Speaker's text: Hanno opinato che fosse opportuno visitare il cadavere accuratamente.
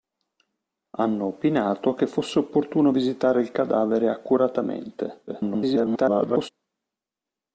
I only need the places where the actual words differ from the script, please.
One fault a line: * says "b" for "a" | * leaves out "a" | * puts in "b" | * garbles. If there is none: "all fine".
* garbles